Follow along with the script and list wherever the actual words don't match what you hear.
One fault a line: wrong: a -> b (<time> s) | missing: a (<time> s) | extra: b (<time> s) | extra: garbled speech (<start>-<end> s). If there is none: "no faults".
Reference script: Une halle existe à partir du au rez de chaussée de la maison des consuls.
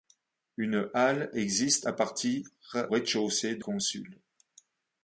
missing: du au (2.5 s)
missing: la maison des (3.6 s)